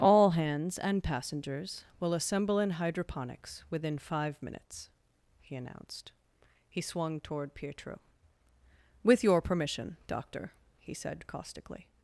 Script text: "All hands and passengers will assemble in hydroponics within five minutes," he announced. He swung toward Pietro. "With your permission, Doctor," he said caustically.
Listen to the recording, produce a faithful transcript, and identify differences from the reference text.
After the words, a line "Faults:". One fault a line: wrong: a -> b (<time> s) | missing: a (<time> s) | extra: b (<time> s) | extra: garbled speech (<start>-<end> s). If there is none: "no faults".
"All hands and passengers will assemble in hydroponics within five minutes," he announced. He swung toward Pietro. "With your permission, Doctor," he said caustically.
Faults:
no faults